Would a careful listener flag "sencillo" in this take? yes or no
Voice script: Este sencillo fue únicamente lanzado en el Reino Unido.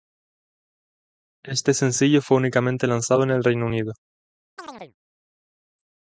no